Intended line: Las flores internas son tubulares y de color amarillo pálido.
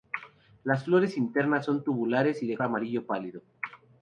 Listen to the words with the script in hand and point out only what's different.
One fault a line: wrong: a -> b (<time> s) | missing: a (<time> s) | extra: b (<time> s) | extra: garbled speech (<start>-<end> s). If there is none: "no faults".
missing: color (2.6 s)